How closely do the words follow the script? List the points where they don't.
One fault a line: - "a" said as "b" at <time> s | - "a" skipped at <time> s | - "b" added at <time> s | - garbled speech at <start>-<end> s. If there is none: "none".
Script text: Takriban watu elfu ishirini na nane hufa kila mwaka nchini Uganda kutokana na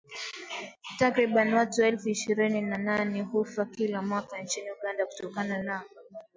none